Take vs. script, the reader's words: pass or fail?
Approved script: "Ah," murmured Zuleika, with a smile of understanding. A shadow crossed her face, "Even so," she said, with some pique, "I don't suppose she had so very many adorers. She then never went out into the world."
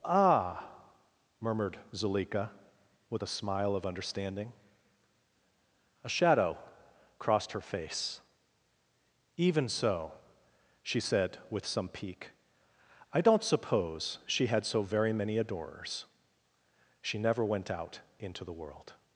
fail